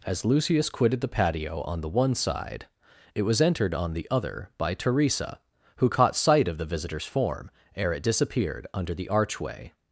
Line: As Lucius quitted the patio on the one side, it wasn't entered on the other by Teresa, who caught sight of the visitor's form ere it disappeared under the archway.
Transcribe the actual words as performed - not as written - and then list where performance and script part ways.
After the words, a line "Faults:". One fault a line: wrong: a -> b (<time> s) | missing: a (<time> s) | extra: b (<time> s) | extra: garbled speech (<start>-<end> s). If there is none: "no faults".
As Lucius quitted the patio on the one side, it was entered on the other by Teresa, who caught sight of the visitor's form ere it disappeared under the archway.
Faults:
wrong: wasn't -> was (3.2 s)